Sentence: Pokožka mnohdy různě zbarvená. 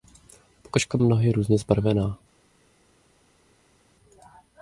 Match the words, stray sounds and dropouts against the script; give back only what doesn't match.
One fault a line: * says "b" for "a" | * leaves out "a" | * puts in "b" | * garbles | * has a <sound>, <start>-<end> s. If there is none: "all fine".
all fine